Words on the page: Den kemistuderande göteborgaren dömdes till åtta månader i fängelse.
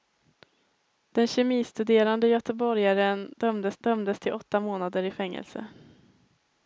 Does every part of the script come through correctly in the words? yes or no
no